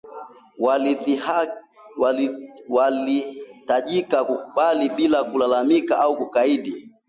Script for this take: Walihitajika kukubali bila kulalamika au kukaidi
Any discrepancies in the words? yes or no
no